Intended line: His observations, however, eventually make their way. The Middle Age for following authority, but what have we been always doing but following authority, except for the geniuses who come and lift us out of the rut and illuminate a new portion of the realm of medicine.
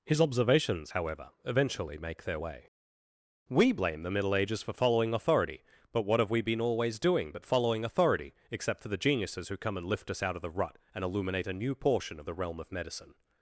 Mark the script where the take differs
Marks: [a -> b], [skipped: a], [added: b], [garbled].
His observations, however, eventually make their way. [added: We blame] The Middle [Age -> Ages] for following authority, but what have we been always doing but following authority, except for the geniuses who come and lift us out of the rut and illuminate a new portion of the realm of medicine.